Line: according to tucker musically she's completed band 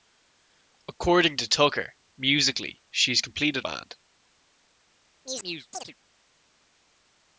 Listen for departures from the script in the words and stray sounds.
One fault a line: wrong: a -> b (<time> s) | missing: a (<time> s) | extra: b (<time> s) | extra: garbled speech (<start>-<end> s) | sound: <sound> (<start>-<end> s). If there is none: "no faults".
sound: chirp (5.2-5.9 s)